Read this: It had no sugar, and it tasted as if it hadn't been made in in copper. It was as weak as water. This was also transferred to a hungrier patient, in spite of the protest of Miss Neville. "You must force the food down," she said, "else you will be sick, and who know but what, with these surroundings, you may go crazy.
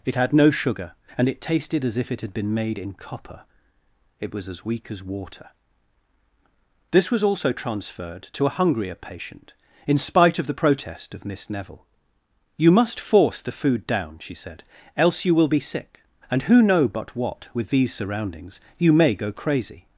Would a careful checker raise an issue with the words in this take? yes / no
yes